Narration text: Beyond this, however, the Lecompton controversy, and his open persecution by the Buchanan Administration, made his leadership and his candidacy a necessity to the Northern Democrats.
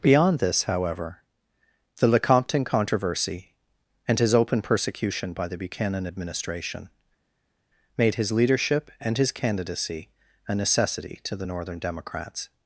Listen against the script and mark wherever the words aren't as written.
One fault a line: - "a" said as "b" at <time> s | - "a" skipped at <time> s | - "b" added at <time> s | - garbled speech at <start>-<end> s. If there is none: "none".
none